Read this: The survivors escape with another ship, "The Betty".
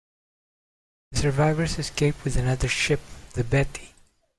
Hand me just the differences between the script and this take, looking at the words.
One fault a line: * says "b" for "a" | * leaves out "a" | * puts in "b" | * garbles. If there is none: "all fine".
all fine